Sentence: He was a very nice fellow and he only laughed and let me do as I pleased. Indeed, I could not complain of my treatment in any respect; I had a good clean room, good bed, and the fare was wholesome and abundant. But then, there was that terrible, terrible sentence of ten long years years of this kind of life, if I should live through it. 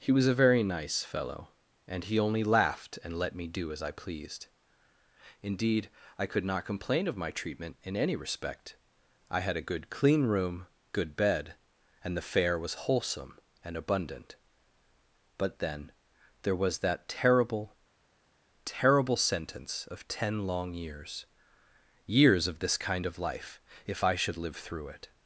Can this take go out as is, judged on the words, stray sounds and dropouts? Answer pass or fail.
pass